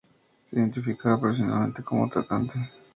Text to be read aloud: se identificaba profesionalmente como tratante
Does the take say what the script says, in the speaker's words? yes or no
yes